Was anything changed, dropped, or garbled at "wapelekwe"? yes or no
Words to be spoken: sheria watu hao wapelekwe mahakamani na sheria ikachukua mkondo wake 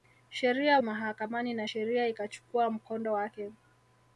yes